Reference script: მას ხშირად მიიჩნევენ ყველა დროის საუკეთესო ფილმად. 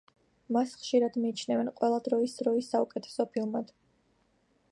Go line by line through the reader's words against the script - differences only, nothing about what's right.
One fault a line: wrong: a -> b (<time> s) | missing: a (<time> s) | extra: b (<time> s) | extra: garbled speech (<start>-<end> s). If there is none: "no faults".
extra: დროის (2.4 s)